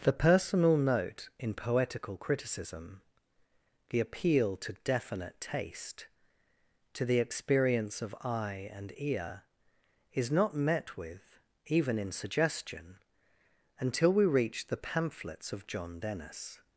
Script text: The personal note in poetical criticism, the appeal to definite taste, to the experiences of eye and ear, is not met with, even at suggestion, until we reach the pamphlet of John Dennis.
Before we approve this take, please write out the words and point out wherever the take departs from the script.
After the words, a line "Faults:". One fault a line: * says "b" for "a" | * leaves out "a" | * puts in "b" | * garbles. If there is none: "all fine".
The personal note in poetical criticism, the appeal to definite taste, to the experience of eye and ear, is not met with, even in suggestion, until we reach the pamphlets of John Dennis.
Faults:
* says "experience" for "experiences"
* says "in" for "at"
* says "pamphlets" for "pamphlet"